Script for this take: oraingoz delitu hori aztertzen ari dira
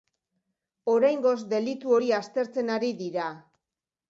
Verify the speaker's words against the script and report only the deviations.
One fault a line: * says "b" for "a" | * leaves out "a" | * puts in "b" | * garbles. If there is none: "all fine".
all fine